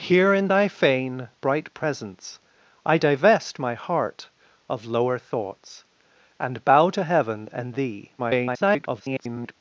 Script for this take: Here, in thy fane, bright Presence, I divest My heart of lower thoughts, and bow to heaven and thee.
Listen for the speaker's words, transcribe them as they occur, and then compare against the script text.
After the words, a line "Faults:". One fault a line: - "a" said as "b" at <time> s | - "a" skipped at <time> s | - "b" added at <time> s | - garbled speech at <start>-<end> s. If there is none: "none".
Here, in thy fane, bright Presence, I divest My heart of lower thoughts, and bow to heaven and thee. [garbled]
Faults:
- garbled speech at 8.2-9.6 s